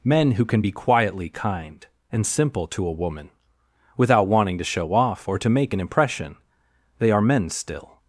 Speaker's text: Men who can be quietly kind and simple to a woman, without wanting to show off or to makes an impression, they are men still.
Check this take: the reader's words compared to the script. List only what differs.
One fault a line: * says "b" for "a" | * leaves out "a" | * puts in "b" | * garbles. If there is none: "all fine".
* says "make" for "makes"